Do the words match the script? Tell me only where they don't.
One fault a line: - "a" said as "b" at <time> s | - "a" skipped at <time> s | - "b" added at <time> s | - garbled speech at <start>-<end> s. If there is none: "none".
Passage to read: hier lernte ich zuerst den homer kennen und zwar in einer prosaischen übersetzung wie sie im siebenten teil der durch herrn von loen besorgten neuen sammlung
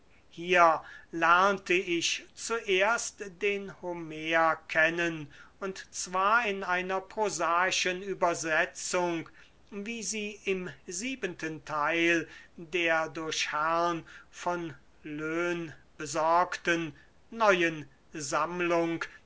none